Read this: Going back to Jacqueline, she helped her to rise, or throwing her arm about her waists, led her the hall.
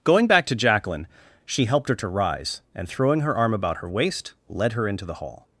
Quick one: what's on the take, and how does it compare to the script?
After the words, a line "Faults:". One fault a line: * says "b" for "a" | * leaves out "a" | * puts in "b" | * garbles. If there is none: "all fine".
Going back to Jacqueline, she helped her to rise, and throwing her arm about her waist, led her into the hall.
Faults:
* says "and" for "or"
* says "waist" for "waists"
* puts in "into"